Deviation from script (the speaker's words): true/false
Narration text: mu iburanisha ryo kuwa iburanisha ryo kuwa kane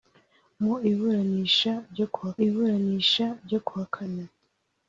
false